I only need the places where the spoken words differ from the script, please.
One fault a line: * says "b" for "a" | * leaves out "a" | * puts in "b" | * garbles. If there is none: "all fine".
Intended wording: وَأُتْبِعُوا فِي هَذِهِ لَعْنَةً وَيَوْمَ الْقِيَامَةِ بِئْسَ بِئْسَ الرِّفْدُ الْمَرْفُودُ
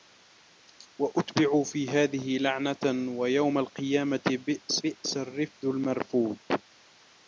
all fine